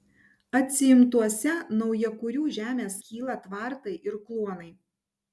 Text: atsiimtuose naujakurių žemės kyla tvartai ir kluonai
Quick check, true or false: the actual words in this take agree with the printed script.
true